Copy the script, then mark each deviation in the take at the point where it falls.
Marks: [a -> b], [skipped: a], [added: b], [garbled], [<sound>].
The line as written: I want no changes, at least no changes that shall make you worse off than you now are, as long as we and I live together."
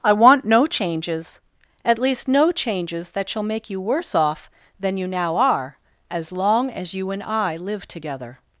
I want no changes, at least no changes that shall make you worse off than you now are, as long as [we -> you] and I live together."